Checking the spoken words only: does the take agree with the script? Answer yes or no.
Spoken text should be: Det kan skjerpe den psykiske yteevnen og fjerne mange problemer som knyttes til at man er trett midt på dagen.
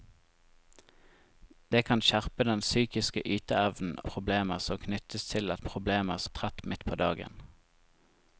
no